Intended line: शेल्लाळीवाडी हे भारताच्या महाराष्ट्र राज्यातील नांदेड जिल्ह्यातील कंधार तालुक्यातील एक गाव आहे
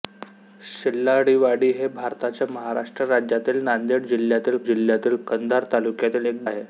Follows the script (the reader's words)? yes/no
no